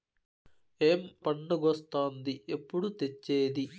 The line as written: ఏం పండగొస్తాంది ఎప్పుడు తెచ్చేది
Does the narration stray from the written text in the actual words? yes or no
no